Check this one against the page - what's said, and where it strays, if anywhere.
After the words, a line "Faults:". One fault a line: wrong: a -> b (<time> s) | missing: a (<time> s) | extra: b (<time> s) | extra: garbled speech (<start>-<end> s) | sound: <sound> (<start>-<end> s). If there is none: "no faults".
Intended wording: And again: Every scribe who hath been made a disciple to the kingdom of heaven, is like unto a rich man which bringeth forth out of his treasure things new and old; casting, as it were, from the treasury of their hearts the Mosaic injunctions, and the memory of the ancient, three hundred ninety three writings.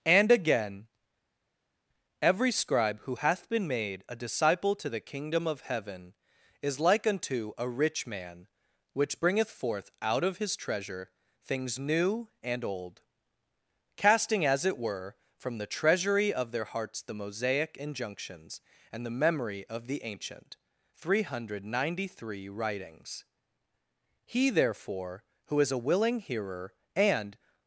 And again: Every scribe who hath been made a disciple to the kingdom of heaven, is like unto a rich man which bringeth forth out of his treasure things new and old; casting, as it were, from the treasury of their hearts the Mosaic injunctions, and the memory of the ancient, three hundred ninety three writings. He therefore, who is a willing hearer, and
Faults:
extra: He therefore who is a willing hearer and (24.3 s)